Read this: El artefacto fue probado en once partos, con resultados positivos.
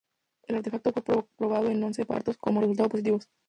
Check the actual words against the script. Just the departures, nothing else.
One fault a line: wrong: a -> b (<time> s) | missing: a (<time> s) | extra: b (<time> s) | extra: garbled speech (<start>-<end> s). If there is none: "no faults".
no faults